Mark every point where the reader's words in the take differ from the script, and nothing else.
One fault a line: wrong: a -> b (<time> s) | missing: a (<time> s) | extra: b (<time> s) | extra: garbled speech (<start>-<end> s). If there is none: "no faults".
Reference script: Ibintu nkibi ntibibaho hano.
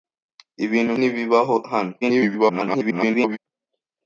missing: nkibi (0.9 s)
extra: garbled speech (2.0-3.4 s)